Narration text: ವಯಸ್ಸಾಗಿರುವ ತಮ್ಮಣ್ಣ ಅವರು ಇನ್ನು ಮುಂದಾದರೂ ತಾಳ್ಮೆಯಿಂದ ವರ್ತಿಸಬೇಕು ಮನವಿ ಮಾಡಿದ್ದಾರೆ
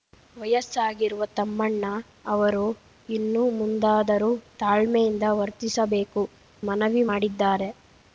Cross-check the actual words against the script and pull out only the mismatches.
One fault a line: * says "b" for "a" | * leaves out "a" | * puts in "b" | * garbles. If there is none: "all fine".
all fine